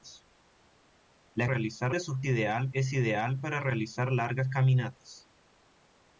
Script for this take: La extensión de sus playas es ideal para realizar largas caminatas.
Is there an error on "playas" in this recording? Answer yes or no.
yes